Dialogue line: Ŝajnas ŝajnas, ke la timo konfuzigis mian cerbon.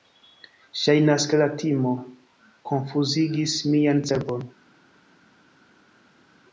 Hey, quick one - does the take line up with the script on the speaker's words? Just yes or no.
no